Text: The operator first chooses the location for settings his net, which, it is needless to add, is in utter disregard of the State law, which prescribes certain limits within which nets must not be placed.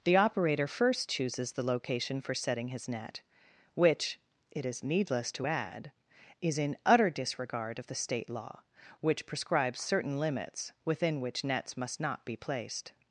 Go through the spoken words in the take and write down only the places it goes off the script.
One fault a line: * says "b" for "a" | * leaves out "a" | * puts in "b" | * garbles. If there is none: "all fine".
* says "setting" for "settings"